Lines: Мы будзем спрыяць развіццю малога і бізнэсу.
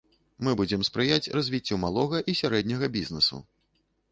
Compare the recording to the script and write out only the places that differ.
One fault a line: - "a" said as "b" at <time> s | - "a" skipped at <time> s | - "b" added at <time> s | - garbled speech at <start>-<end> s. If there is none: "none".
- "сярэдняга" added at 2.4 s